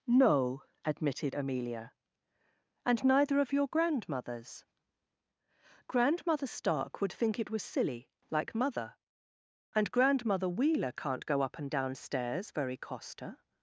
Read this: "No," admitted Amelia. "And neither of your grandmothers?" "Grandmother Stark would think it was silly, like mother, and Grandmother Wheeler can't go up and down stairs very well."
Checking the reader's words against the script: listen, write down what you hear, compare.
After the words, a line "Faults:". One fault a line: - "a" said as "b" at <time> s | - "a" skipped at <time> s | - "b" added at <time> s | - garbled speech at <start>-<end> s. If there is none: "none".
"No," admitted Amelia. "And neither of your grandmothers?" "Grandmother Stark would think it was silly, like mother, and Grandmother Wheeler can't go up and down stairs very costa."
Faults:
- "well" said as "costa" at 12.8 s